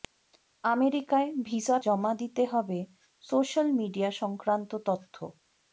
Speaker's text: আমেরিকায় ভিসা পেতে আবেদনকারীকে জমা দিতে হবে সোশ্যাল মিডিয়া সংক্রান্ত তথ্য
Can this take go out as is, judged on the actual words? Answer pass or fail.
fail